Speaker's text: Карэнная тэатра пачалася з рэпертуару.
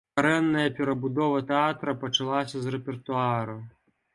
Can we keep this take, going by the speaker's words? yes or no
no